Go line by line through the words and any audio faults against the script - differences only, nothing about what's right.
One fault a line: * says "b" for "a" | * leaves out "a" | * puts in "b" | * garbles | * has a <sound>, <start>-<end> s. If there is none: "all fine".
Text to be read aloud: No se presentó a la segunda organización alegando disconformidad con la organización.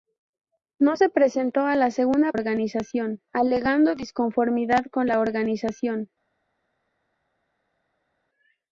all fine